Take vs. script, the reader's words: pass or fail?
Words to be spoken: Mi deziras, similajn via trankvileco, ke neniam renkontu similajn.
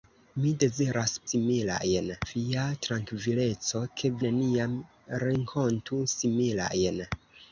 pass